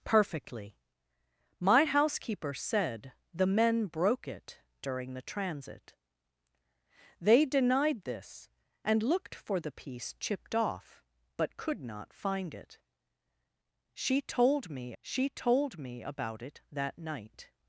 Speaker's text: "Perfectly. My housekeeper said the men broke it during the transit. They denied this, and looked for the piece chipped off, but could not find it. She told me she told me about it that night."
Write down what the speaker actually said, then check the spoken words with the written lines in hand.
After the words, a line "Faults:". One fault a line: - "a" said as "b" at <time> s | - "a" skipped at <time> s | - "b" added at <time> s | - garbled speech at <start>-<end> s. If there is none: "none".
"Perfectly. My housekeeper said the men broke it during the transit. They denied this, and looked for the piece chipped off, but could not find it. She told me she told me about it that night."
Faults:
none